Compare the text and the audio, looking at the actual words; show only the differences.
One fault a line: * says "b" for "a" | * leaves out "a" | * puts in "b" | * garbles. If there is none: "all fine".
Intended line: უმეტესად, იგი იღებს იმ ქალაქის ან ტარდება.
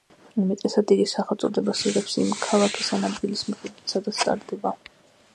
* puts in "სახელწოდებას"
* puts in "ადგილის მიხედვით სადაც"